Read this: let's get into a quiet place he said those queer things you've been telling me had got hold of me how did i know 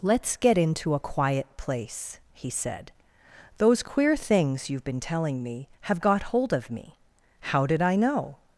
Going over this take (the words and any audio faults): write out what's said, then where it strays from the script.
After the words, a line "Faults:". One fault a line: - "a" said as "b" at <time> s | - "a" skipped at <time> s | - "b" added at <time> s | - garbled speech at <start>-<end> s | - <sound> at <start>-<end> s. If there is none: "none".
let's get into a quiet place he said those queer things you've been telling me have got hold of me how did i know
Faults:
- "had" said as "have" at 5.8 s